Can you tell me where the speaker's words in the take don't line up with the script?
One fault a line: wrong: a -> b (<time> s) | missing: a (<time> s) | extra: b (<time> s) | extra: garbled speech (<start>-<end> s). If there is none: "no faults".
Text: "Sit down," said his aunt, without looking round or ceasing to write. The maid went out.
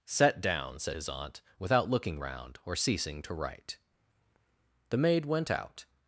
wrong: Sit -> Set (0.1 s)